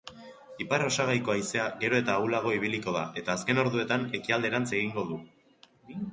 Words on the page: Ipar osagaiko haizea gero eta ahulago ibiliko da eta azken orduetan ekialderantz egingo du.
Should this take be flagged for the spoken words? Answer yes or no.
no